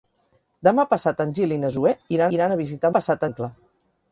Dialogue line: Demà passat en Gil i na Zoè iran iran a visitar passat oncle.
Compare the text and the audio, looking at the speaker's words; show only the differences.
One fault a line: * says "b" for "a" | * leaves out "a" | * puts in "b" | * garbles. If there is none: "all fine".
all fine